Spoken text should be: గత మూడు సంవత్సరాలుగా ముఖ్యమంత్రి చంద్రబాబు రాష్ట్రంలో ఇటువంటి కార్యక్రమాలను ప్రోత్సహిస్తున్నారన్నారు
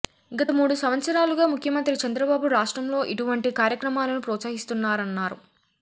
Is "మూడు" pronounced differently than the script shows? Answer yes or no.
no